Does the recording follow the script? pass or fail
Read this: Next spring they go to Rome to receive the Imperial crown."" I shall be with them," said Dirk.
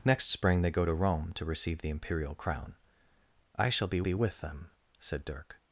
fail